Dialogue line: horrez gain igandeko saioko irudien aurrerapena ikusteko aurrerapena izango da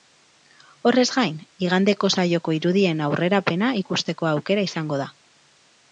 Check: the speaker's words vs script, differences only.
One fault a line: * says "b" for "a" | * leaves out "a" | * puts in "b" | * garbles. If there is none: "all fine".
* says "aukera" for "aurrerapena"